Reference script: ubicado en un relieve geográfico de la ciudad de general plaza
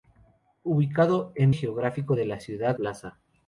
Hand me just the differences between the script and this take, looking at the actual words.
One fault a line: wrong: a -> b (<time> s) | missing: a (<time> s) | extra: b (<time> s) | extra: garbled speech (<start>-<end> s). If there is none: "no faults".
missing: un relieve (1.5 s)
missing: de general (2.8 s)